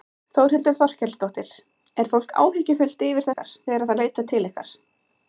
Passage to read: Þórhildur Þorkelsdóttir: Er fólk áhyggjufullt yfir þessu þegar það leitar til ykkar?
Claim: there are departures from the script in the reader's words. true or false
true